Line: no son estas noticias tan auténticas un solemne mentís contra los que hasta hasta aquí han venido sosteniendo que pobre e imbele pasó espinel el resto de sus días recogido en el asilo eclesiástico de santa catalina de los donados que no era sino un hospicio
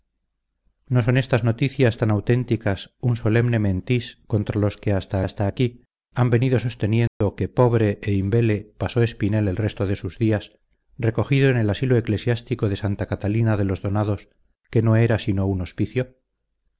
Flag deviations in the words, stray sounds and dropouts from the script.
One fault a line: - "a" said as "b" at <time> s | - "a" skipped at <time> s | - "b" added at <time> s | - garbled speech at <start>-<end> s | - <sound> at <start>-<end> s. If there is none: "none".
- dropout at 7.1-7.2 s